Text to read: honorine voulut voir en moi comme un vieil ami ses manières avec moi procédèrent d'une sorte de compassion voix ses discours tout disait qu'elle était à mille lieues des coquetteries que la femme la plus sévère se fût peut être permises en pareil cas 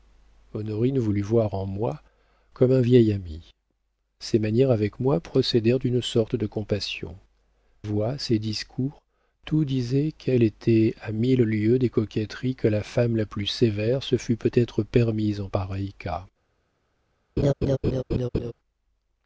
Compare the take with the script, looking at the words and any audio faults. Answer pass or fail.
fail